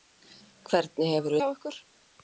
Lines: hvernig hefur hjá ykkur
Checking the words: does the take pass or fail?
pass